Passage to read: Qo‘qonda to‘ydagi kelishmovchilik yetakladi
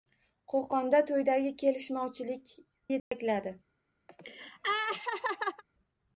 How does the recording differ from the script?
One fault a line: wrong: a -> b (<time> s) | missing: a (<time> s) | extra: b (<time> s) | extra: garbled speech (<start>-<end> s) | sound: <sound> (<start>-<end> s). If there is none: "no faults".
sound: dropout (3.0-3.1 s)
sound: laugh (4.1-5.6 s)